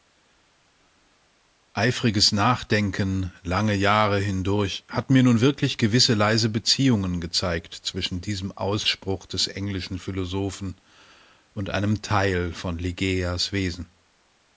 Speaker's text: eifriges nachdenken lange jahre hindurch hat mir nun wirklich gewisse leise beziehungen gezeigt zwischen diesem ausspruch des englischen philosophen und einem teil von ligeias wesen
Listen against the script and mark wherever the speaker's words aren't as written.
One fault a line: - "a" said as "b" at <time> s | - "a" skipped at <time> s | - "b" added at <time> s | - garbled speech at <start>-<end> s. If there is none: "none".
none